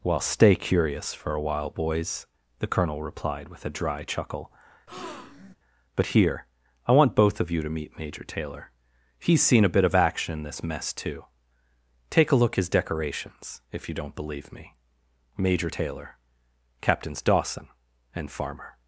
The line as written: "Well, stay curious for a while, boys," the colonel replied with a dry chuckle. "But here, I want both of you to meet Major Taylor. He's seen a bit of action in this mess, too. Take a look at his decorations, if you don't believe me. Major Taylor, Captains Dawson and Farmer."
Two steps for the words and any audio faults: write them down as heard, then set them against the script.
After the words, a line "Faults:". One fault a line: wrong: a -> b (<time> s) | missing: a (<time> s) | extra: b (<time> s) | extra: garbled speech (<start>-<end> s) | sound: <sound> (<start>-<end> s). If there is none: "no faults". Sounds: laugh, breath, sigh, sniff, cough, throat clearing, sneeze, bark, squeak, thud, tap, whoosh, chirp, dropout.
"Well, stay curious for a while, boys," the colonel replied with a dry chuckle. "But here, I want both of you to meet Major Taylor. He's seen a bit of action in this mess, too. Take a look his decorations, if you don't believe me. Major Taylor, Captains Dawson and Farmer."
Faults:
sound: breath (4.9-5.6 s)
missing: at (12.6 s)